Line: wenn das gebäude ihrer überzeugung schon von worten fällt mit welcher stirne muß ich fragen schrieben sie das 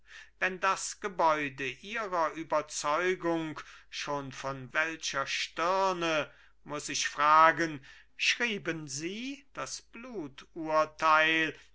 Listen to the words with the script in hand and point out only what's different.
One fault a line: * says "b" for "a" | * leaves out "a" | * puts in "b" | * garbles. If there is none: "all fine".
* leaves out "worten fällt mit"